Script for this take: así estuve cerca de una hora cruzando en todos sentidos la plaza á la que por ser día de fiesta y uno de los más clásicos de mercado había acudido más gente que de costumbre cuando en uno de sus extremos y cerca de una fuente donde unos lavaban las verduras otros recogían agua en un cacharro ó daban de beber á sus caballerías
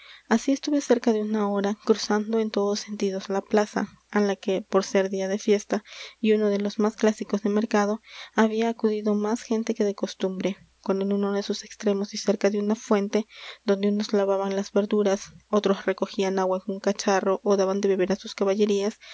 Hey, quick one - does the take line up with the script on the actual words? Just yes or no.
yes